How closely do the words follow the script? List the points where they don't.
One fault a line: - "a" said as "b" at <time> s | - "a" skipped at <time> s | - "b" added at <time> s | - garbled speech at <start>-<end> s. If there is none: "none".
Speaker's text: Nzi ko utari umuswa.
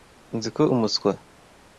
- "utari" skipped at 0.6 s